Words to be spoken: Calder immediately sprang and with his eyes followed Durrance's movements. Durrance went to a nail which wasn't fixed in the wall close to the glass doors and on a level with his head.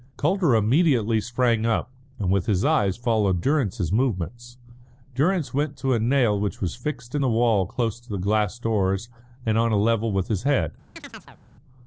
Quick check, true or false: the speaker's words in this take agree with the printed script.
false